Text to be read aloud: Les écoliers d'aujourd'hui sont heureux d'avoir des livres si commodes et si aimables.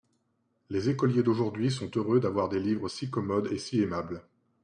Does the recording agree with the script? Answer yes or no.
yes